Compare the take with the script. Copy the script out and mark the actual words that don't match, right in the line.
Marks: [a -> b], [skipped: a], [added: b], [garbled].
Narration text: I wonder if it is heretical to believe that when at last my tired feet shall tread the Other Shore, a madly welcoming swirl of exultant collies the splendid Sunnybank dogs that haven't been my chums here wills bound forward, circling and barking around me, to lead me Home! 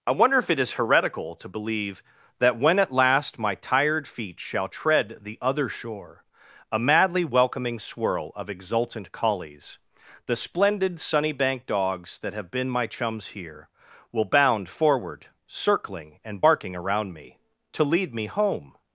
I wonder if it is heretical to believe that when at last my tired feet shall tread the Other Shore, a madly welcoming swirl of exultant collies the splendid Sunnybank dogs that [haven't -> have] been my chums here [wills -> will] bound forward, circling and barking around me, to lead me Home!